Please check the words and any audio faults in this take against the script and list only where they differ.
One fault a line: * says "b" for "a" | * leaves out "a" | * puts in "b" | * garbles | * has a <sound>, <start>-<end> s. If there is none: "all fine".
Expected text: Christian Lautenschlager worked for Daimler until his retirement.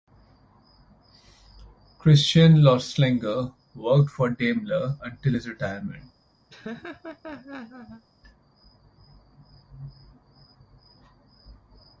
* has a laugh, 6.5-8.0 s